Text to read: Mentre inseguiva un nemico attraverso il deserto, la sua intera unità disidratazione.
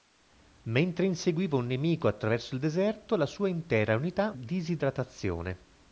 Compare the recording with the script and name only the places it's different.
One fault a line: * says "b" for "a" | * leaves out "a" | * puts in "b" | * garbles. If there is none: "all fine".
all fine